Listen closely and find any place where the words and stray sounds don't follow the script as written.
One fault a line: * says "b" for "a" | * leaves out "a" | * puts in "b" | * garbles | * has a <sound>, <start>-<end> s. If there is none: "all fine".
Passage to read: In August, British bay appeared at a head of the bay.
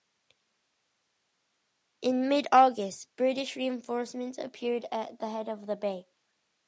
* puts in "mid"
* says "reinforcements" for "bay"
* says "the" for "a"